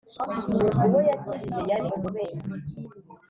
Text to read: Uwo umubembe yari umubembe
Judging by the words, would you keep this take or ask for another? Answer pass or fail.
fail